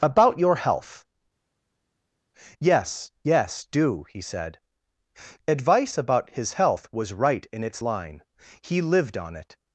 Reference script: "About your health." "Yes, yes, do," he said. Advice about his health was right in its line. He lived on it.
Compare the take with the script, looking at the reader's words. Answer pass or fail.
pass